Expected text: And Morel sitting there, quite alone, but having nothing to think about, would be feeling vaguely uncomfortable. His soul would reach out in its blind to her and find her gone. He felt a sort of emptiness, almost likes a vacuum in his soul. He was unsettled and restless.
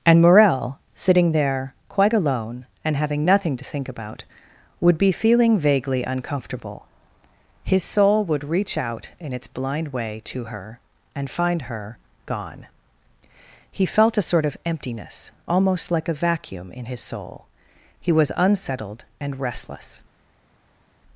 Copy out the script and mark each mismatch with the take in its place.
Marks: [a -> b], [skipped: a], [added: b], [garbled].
And Morel sitting there, quite alone, [but -> and] having nothing to think about, would be feeling vaguely uncomfortable. His soul would reach out in its blind [added: way] to her and find her gone. He felt a sort of emptiness, almost [likes -> like] a vacuum in his soul. He was unsettled and restless.